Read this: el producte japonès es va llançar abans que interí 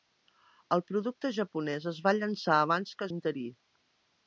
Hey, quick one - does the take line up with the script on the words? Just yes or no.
yes